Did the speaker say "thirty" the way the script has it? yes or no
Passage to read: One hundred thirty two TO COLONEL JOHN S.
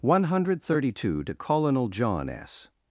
yes